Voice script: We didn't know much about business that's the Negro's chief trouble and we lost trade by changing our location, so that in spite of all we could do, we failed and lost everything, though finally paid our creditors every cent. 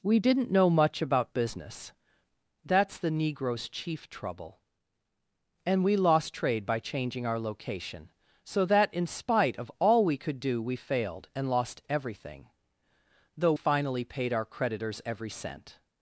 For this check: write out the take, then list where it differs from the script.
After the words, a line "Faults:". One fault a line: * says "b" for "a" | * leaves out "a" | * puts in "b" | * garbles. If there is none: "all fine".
We didn't know much about business that's the Negro's chief trouble and we lost trade by changing our location, so that in spite of all we could do, we failed and lost everything, though finally paid our creditors every cent.
Faults:
all fine